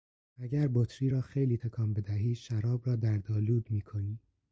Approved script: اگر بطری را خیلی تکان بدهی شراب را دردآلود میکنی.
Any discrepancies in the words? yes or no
no